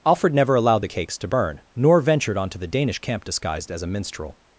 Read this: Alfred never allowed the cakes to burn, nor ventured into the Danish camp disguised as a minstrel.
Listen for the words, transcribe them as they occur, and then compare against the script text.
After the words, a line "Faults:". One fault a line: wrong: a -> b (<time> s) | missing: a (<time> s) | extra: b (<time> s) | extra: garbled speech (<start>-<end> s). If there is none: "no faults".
Alfred never allowed the cakes to burn, nor ventured onto the Danish camp disguised as a minstrel.
Faults:
wrong: into -> onto (2.4 s)